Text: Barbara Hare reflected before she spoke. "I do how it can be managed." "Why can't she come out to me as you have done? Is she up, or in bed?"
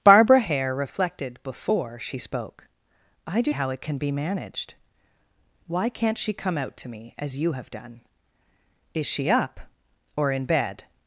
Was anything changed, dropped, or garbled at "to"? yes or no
no